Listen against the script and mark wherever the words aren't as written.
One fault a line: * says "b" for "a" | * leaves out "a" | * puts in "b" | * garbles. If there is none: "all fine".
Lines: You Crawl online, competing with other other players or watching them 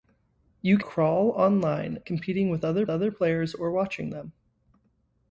all fine